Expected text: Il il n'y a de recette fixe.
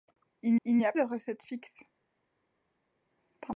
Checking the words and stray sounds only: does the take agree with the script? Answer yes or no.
yes